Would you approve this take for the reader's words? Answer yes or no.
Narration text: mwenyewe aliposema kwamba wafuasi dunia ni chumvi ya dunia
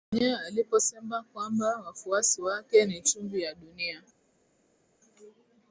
no